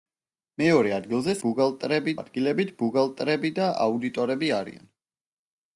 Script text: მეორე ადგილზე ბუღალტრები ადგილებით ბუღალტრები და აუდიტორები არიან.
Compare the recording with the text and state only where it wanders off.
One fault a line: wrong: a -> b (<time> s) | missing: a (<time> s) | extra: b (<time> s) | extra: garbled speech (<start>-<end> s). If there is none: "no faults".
no faults